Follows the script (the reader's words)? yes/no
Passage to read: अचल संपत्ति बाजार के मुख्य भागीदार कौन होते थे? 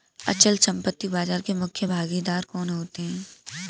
no